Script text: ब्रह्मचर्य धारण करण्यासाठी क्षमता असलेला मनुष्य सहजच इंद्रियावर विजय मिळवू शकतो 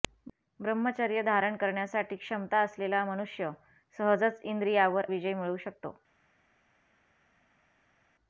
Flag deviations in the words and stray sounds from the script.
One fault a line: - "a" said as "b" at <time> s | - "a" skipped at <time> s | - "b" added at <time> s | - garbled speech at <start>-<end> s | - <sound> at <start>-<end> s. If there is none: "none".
none